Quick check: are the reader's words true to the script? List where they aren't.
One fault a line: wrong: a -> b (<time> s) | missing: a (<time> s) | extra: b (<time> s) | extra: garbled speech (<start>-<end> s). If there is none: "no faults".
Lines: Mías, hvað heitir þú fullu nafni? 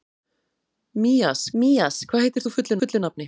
extra: mías (1.6 s)
extra: fullu (2.8 s)